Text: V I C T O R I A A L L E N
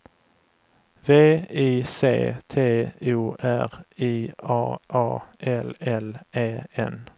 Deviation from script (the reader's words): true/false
false